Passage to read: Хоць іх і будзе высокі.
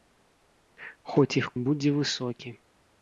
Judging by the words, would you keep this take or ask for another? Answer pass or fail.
pass